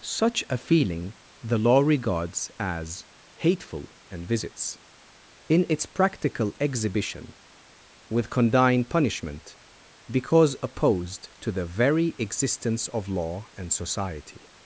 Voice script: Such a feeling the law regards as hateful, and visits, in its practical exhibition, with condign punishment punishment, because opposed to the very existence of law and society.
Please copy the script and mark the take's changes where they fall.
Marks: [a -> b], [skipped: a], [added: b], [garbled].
Such a feeling the law regards as hateful, and visits, in its practical exhibition, with condign punishment [skipped: punishment,] because opposed to the very existence of law and society.